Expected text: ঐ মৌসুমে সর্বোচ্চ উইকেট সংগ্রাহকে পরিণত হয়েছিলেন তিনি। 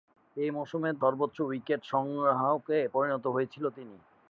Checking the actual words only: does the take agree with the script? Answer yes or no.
yes